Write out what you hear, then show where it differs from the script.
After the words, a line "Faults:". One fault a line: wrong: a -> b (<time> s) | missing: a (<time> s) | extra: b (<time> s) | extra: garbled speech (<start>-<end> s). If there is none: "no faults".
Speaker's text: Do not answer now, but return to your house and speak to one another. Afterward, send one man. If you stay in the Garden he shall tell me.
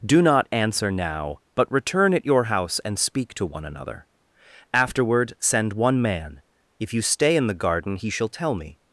Do not answer now, but return at your house and speak to one another. Afterward, send one man. If you stay in the Garden he shall tell me.
Faults:
wrong: to -> at (2.1 s)